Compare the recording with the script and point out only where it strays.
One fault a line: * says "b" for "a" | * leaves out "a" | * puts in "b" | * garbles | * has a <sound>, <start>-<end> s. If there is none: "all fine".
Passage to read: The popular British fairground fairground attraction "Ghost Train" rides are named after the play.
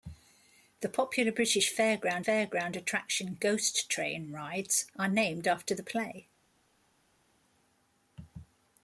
all fine